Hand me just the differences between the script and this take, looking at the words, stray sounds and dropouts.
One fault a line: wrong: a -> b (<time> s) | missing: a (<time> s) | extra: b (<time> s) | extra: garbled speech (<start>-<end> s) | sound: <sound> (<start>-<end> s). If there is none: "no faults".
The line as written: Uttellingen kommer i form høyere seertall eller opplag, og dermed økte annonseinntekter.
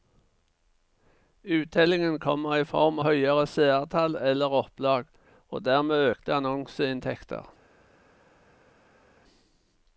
no faults